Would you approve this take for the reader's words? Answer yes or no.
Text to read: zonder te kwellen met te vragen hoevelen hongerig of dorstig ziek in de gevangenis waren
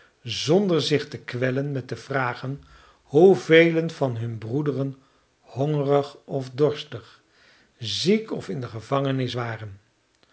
no